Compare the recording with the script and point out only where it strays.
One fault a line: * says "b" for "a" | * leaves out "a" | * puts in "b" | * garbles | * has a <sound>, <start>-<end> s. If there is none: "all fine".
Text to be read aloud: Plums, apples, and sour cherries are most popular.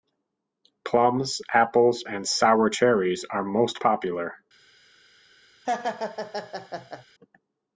* has a laugh, 5.7-7.1 s